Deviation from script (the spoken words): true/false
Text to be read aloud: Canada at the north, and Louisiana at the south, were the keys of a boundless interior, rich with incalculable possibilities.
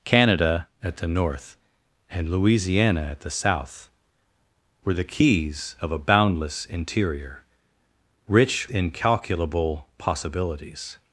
true